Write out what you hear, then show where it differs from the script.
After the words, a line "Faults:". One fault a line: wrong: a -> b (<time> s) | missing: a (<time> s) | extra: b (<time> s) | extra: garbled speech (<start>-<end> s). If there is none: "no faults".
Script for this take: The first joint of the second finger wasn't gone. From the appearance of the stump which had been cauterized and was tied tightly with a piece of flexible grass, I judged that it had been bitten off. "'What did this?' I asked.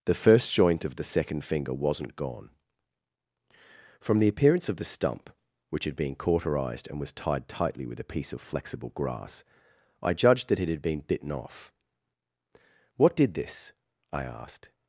The first joint of the second finger wasn't gone. From the appearance of the stump which had been cauterized and was tied tightly with a piece of flexible grass, I judged that it had been bitten off. "'What did this?' I asked.
Faults:
no faults